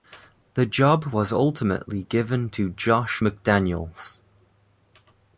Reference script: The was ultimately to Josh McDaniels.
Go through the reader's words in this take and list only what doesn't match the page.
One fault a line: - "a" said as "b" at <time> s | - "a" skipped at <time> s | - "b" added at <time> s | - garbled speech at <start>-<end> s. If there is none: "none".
- "job" added at 0.7 s
- "given" added at 2.0 s